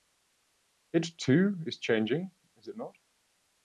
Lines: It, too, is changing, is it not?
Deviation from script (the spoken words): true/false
false